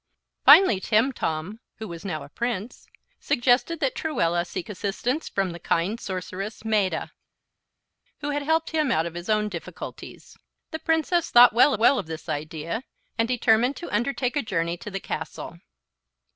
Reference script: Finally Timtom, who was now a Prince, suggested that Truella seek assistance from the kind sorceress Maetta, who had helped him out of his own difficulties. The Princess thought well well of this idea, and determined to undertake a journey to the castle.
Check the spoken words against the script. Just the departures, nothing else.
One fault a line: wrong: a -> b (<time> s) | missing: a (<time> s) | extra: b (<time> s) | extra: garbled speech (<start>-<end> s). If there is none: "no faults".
no faults